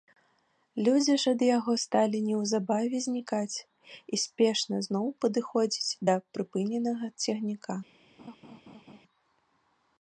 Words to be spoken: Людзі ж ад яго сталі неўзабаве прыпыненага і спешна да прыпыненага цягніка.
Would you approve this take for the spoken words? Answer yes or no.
no